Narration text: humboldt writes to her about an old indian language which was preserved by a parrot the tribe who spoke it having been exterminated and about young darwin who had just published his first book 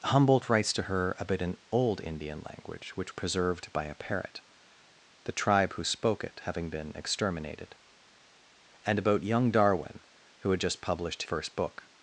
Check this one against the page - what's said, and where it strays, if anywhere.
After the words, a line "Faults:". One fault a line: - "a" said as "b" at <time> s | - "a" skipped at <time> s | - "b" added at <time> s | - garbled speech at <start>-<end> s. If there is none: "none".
humboldt writes to her about an old indian language which preserved by a parrot the tribe who spoke it having been exterminated and about young darwin who had just published first book
Faults:
- "was" skipped at 3.1 s
- "his" skipped at 11.2 s